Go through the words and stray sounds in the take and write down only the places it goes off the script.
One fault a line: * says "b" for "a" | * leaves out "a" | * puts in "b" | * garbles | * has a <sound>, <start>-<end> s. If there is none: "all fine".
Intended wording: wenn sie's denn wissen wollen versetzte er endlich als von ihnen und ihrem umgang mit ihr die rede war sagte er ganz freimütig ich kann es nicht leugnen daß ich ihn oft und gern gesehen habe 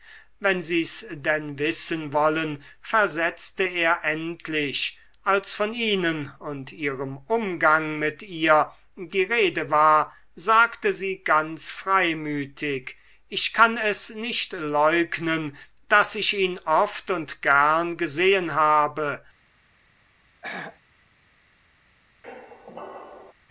* says "sie" for "er"
* has a throat clearing, 20.4-20.8 s
* has a squeak, 22.2-23.3 s